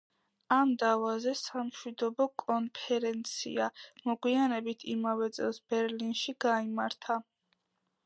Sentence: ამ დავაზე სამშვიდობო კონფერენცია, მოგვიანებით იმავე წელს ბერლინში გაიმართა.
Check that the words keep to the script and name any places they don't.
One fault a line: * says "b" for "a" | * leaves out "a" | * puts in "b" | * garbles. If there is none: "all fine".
all fine